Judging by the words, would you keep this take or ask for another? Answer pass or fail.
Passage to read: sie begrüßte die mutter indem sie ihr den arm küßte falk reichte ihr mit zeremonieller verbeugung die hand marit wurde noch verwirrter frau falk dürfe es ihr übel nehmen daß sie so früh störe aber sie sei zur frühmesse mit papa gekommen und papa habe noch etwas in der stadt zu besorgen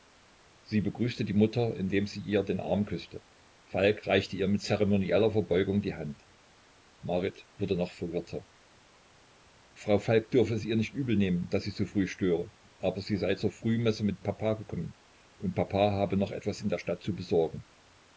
fail